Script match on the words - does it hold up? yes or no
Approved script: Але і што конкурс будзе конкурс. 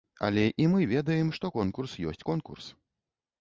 no